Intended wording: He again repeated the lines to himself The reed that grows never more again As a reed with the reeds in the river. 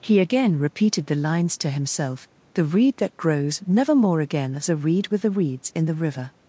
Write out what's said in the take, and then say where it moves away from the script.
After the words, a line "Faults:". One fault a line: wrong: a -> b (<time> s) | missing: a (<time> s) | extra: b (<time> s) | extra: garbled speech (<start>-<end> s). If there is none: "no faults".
He again repeated the lines to himself The reed that grows never more again As a reed with the reeds in the river.
Faults:
no faults